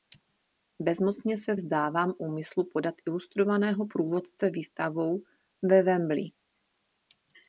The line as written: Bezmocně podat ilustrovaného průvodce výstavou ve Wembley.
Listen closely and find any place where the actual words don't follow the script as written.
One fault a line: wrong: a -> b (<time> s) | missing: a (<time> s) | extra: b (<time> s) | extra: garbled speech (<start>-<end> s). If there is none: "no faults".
extra: se vzdávám úmyslu (1.4 s)